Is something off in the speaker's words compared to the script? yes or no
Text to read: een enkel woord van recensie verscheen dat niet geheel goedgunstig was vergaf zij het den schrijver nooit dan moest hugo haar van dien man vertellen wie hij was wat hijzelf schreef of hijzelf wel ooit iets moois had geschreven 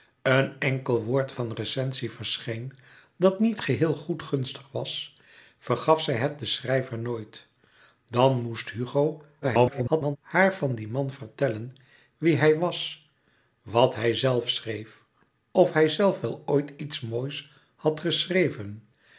yes